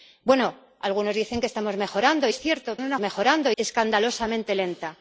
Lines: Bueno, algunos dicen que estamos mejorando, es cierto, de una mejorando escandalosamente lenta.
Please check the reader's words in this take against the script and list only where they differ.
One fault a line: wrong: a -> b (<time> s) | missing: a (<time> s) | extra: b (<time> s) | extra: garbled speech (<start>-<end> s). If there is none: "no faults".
no faults